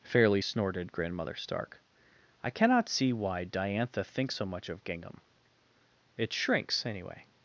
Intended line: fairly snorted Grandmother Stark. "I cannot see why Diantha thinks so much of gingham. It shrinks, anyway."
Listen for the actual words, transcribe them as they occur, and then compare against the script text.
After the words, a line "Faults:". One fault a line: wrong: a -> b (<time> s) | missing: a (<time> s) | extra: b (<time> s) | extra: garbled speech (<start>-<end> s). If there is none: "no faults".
fairly snorted Grandmother Stark. "I cannot see why Diantha thinks so much of gingham. It shrinks, anyway."
Faults:
no faults